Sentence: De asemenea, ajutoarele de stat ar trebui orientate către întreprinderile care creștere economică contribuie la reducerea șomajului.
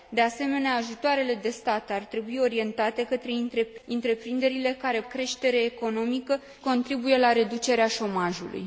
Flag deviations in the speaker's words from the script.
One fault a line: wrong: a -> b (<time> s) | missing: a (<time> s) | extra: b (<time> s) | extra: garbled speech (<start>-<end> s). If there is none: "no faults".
no faults